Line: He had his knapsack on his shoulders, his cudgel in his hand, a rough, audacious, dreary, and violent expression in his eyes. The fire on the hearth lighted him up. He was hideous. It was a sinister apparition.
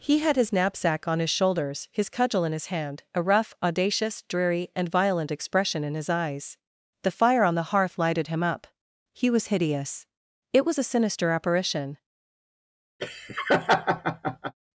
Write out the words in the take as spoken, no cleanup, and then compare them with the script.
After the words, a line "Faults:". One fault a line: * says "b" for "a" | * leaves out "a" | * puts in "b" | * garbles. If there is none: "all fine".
He had his knapsack on his shoulders, his cudgel in his hand, a rough, audacious, dreary, and violent expression in his eyes. The fire on the hearth lighted him up. He was hideous. It was a sinister apparition.
Faults:
all fine